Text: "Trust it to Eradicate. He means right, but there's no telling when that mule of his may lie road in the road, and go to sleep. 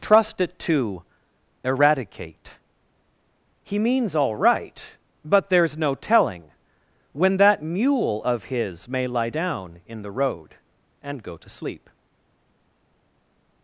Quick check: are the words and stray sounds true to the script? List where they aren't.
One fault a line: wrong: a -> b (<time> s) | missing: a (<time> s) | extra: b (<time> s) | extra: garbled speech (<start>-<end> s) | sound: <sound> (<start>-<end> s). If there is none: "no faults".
extra: all (4.2 s)
wrong: road -> down (9.3 s)